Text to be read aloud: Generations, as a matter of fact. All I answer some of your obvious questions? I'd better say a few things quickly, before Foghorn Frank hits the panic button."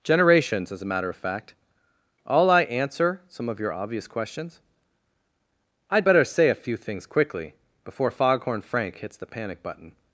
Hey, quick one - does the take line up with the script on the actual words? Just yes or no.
yes